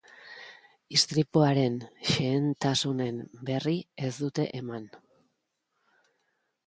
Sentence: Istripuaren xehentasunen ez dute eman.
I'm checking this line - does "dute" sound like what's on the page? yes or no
yes